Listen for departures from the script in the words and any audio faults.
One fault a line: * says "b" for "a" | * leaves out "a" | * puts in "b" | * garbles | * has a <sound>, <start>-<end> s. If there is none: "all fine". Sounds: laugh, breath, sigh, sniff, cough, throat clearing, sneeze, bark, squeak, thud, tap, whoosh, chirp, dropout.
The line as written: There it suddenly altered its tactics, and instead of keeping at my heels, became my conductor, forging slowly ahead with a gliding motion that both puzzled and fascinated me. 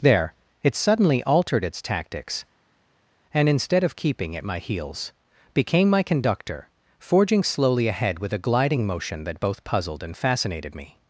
all fine